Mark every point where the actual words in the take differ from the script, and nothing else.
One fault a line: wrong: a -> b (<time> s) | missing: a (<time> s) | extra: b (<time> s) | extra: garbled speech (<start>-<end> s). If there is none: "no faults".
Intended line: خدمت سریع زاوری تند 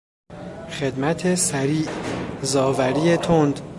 no faults